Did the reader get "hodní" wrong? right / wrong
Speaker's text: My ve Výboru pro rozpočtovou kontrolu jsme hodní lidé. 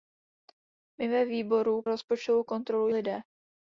wrong